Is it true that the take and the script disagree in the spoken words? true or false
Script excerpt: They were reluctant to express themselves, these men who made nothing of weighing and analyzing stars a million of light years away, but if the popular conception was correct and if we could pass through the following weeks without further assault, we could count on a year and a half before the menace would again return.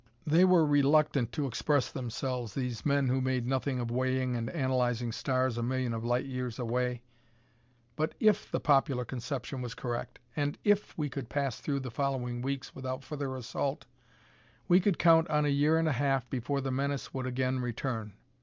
false